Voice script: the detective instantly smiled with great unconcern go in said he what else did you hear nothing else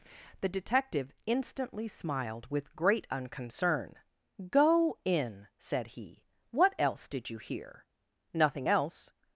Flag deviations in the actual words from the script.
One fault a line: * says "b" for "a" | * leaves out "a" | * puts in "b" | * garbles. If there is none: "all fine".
all fine